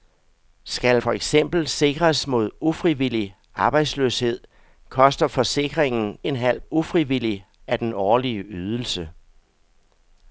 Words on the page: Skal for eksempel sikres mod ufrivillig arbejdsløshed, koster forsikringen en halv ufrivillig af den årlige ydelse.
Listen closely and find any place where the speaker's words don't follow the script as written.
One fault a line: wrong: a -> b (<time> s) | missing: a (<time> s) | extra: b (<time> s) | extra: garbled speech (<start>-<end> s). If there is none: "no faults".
no faults